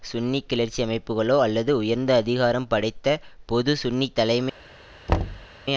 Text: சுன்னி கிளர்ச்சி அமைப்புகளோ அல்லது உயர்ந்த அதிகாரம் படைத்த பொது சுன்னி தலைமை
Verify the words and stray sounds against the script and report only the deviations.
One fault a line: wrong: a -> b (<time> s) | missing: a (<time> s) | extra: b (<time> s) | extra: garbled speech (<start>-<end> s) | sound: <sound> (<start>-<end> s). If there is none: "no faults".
sound: thud (5.1-5.5 s)